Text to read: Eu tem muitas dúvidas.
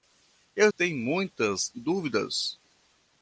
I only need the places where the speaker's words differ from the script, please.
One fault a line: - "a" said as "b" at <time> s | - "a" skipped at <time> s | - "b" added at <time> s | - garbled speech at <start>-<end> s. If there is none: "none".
none